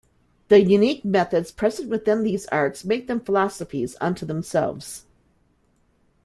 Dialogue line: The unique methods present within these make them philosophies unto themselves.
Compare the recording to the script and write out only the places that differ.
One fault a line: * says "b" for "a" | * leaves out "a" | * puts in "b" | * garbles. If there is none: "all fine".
* puts in "arts"